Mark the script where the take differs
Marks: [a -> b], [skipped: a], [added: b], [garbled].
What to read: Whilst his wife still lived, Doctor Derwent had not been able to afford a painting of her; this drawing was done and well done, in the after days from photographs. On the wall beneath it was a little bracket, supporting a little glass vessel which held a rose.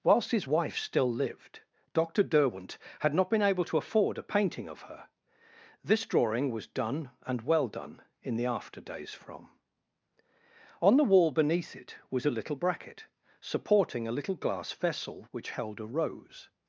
Whilst his wife still lived, Doctor Derwent had not been able to afford a painting of her; this drawing was done and well done, in the after days from [skipped: photographs.] On the wall beneath it was a little bracket, supporting a little glass vessel which held a rose.